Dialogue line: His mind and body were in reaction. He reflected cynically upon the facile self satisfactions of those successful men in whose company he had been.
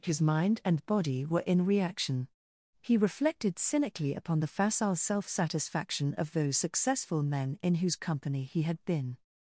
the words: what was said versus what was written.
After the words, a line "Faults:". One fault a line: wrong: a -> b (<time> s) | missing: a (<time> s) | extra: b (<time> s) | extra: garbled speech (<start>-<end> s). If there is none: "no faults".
His mind and body were in reaction. He reflected cynically upon the facile self satisfaction of those successful men in whose company he had been.
Faults:
wrong: satisfactions -> satisfaction (5.3 s)